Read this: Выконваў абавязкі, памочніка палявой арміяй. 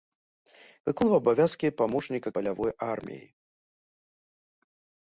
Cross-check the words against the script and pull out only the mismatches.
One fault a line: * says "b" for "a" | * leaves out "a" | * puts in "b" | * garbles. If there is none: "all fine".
all fine